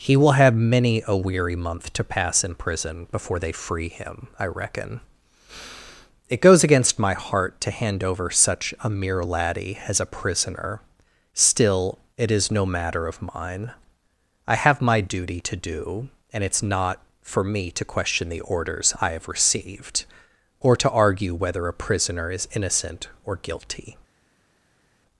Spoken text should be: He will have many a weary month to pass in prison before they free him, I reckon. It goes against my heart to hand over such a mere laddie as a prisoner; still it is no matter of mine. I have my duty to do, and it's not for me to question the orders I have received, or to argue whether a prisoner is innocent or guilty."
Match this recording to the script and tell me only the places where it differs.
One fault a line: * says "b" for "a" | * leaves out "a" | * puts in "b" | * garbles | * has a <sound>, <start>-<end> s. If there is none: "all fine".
all fine